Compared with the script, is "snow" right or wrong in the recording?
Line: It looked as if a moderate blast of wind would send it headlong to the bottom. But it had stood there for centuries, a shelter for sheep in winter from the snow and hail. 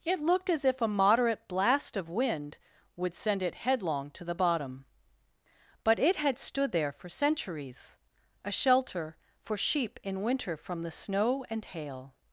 right